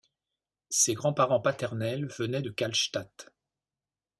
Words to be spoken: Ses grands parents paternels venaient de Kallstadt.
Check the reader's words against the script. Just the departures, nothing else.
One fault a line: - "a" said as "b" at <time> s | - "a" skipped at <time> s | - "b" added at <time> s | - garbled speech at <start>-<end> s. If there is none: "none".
none